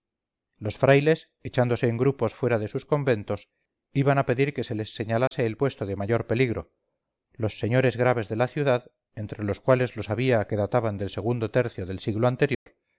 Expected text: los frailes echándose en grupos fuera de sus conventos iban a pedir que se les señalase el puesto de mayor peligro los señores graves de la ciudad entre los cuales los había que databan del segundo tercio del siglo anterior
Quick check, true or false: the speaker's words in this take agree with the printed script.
true